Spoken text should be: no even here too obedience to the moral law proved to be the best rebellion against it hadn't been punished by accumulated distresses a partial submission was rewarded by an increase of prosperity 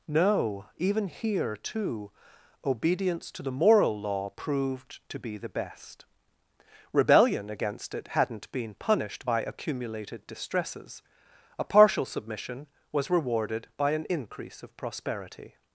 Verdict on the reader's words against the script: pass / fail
pass